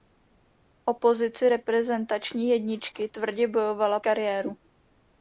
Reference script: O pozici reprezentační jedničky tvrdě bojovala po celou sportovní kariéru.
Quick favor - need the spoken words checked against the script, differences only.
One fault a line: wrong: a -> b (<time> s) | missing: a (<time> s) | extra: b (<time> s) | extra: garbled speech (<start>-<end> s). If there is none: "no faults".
missing: po celou sportovní (4.0 s)